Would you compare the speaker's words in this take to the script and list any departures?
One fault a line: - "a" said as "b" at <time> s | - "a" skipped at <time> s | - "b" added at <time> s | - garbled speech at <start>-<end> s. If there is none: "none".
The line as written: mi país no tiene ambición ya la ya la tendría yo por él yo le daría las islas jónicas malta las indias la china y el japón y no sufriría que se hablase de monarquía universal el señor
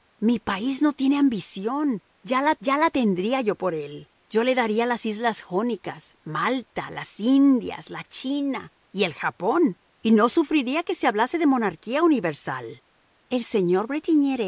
none